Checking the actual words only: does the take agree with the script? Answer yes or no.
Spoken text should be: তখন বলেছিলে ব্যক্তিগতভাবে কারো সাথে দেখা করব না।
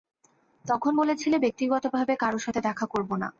yes